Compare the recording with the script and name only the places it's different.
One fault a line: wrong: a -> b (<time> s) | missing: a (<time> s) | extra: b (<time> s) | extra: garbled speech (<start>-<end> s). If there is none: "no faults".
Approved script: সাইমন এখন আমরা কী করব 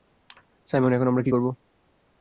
no faults